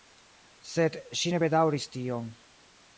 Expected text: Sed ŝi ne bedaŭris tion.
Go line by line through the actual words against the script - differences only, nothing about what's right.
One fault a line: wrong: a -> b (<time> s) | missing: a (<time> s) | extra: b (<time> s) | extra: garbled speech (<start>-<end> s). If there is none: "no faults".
no faults